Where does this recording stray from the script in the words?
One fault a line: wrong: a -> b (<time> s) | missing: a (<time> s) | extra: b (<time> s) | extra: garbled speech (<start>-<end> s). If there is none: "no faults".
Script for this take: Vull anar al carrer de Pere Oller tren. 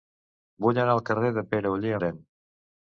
no faults